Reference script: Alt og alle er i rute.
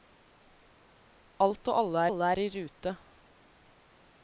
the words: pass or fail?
fail